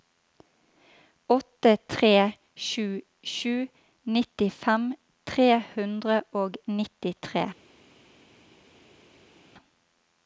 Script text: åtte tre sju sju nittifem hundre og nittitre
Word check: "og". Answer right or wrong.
right